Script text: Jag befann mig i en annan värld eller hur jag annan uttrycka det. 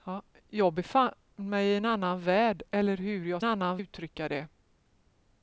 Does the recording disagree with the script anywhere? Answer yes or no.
no